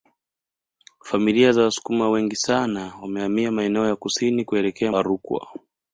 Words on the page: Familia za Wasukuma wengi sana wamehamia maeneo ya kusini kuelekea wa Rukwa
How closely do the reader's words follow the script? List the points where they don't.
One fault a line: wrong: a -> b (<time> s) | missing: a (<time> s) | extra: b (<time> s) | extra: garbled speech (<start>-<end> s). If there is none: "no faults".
no faults